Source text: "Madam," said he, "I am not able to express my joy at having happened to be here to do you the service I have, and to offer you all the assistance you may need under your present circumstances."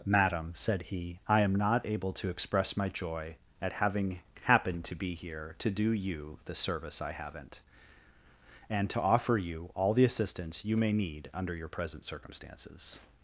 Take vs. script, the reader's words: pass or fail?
fail